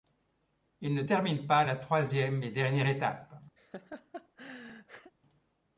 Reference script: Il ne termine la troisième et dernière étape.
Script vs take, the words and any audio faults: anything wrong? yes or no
yes